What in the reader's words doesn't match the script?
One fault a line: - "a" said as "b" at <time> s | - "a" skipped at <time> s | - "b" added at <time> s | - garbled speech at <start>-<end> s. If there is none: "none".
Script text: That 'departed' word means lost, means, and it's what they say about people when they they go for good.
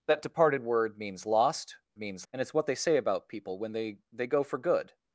none